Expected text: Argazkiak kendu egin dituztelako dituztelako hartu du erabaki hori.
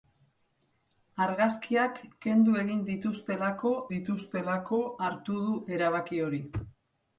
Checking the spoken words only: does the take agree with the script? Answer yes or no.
yes